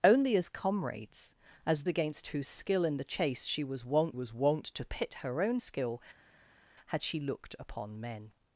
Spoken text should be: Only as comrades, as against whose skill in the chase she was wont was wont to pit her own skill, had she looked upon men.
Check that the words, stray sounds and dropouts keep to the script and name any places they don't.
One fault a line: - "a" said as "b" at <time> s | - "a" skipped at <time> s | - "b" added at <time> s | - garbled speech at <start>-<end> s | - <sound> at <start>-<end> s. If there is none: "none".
none